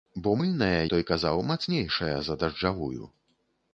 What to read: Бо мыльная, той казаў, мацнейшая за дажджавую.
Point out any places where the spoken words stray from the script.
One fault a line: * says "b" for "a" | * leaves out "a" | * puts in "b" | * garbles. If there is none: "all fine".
all fine